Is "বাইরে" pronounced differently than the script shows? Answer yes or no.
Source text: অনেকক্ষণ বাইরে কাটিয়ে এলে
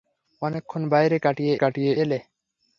no